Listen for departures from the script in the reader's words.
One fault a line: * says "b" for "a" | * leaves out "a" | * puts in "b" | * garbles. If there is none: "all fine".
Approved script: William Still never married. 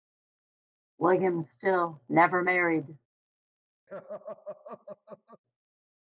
all fine